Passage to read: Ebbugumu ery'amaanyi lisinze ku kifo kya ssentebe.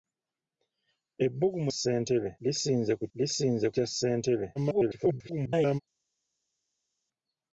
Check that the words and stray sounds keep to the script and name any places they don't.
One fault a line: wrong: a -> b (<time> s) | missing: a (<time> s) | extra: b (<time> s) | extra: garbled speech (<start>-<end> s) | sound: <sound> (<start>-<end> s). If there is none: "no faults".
wrong: ery'amaanyi -> ssentebe (1.7 s)
wrong: kifo -> lisinze (3.2 s)
extra: garbled speech (4.6-5.8 s)